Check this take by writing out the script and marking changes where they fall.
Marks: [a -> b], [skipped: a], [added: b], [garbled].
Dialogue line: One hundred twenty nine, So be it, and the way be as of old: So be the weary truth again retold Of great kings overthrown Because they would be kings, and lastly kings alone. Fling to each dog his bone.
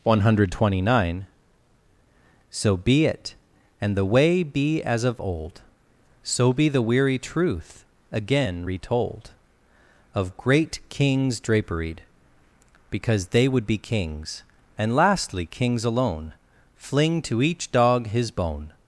One hundred twenty nine, So be it, and the way be as of old: So be the weary truth again retold Of great kings [overthrown -> draperied] Because they would be kings, and lastly kings alone. Fling to each dog his bone.